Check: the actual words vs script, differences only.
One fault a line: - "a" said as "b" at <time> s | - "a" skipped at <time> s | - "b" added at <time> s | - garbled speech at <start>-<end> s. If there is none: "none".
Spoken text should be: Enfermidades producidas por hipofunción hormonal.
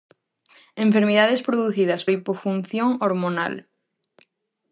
- "por" skipped at 2.0 s